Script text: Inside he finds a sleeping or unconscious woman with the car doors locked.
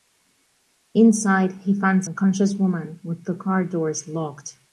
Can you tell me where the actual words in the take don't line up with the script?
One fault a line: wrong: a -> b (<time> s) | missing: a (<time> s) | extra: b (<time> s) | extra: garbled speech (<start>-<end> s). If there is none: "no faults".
missing: a sleeping or (2.1 s)